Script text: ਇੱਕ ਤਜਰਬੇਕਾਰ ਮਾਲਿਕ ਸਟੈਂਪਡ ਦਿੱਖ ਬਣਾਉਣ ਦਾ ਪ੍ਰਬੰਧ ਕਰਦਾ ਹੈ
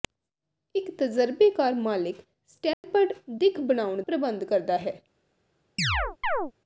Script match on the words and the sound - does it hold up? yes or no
no